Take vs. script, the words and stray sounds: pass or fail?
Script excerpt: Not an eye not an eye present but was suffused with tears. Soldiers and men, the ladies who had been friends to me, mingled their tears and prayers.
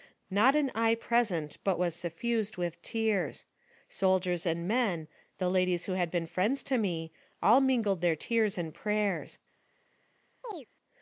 fail